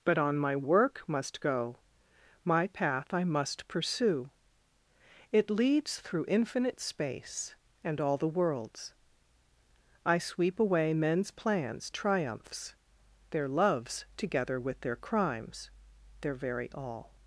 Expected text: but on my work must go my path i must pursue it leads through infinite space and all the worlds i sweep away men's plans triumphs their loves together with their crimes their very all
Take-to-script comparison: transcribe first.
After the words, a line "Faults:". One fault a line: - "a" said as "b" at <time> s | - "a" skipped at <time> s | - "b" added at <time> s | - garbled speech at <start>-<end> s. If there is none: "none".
but on my work must go my path i must pursue it leads through infinite space and all the worlds i sweep away men's plans triumphs their loves together with their crimes their very all
Faults:
none